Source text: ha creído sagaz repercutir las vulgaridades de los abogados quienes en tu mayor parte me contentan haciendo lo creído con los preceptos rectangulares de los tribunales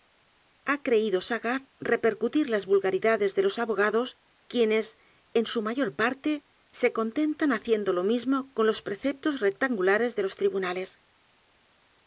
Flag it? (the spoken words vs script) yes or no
yes